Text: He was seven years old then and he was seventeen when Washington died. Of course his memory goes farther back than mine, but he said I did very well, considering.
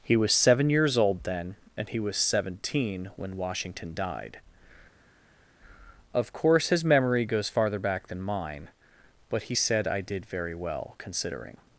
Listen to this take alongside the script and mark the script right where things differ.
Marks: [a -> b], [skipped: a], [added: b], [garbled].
He was seven years old then and he was seventeen when Washington died. Of course his memory goes farther back than mine, but he said I did very well, considering.